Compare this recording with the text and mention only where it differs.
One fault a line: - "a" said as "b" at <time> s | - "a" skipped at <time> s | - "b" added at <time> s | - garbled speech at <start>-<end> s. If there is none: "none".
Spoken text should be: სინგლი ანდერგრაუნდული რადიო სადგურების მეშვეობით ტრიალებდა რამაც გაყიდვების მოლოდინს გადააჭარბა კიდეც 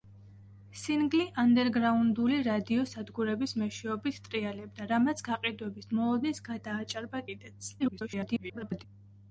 - garbled speech at 7.8-8.8 s